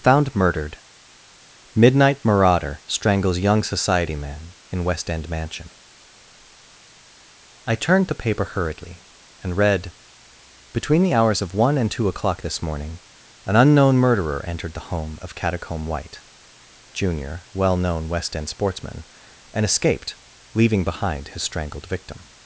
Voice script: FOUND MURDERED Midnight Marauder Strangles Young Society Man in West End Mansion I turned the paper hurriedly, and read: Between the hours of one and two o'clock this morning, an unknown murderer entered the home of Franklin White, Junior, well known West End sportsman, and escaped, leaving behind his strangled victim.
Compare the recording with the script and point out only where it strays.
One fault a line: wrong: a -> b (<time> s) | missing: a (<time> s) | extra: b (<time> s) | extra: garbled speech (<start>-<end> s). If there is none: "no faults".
wrong: Franklin -> Catacomb (15.3 s)